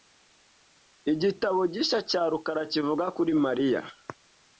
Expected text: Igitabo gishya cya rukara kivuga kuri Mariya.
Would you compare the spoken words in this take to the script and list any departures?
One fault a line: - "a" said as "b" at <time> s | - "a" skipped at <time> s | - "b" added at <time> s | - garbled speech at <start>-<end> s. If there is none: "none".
none